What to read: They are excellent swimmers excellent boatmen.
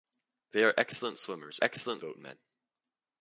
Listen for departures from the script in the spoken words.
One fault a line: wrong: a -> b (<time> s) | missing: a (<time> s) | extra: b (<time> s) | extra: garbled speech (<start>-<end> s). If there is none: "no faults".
no faults